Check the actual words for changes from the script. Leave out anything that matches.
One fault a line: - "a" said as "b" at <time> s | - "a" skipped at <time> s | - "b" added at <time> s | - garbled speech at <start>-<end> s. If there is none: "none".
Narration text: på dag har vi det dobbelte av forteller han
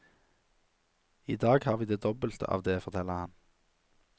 - "på" said as "i" at 1.2 s
- "det" added at 2.6 s